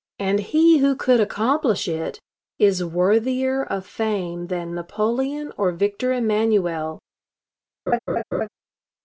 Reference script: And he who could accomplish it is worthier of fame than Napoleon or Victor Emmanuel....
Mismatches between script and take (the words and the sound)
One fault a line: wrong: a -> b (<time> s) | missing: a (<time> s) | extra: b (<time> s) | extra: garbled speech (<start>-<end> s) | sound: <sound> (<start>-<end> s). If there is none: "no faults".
sound: laugh (7.9-8.5 s)